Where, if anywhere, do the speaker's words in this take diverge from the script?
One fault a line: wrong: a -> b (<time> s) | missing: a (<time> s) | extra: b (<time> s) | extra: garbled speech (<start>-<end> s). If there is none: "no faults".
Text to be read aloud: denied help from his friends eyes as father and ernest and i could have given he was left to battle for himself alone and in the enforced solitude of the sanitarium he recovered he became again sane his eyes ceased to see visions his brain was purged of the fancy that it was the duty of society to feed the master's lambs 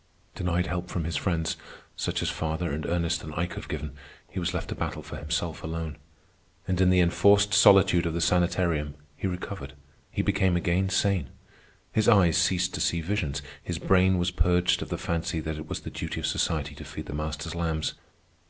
wrong: eyes -> such (1.9 s)